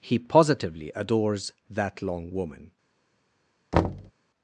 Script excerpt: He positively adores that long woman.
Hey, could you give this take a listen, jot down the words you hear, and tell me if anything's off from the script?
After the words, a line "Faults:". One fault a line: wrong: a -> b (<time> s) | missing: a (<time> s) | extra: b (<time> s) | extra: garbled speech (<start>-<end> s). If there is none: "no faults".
He positively adores that long woman.
Faults:
no faults